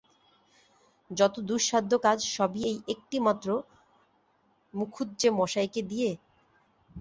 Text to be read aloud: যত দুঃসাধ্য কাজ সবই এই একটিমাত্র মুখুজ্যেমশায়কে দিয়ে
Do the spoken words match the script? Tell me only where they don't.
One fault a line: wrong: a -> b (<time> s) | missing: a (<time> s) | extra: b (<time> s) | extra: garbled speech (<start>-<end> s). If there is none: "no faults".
no faults